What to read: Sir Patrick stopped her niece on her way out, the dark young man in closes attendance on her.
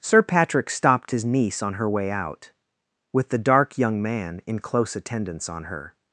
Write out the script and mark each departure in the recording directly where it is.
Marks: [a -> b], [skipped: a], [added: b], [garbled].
Sir Patrick stopped [her -> his] niece on her way out, [added: with] the dark young man in [closes -> close] attendance on her.